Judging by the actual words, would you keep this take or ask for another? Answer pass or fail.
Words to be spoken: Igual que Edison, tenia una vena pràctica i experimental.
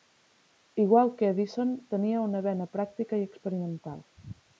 pass